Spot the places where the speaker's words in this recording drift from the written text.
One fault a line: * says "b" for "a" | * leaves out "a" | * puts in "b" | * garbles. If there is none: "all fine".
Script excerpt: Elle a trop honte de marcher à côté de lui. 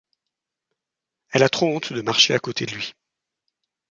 all fine